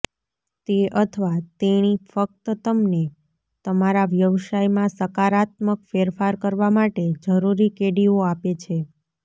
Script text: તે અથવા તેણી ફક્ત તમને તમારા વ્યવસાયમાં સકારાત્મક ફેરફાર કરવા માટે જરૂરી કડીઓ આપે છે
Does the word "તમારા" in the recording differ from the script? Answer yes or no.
no